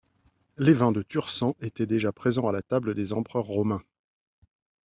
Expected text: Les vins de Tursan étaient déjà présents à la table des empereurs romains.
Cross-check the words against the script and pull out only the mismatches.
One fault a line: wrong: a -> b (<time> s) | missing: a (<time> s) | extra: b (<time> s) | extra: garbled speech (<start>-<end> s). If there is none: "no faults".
no faults